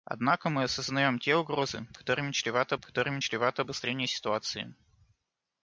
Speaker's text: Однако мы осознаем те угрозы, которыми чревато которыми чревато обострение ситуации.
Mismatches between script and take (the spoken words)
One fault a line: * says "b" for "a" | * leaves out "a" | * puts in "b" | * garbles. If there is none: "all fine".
all fine